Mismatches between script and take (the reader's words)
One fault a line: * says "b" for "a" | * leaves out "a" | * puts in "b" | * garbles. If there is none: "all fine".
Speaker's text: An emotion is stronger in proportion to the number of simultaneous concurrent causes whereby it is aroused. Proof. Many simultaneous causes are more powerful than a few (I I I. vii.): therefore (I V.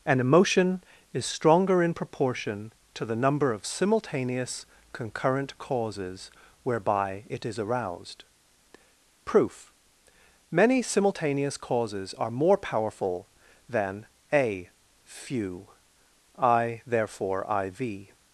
* leaves out "I I vii"